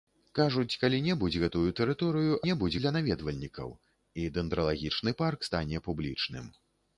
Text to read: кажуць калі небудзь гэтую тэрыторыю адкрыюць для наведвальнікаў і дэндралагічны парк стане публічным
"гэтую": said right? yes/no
yes